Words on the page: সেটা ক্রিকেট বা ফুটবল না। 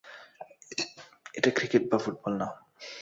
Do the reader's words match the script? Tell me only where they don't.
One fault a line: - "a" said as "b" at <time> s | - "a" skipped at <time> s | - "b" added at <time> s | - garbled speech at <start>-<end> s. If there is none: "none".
- "সেটা" said as "এটা" at 1.3 s